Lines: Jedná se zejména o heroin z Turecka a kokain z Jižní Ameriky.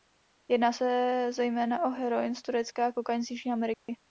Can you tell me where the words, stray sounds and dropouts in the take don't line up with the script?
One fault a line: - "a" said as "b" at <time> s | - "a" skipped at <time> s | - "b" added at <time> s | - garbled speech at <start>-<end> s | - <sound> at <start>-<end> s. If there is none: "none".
- dropout at 3.7-3.9 s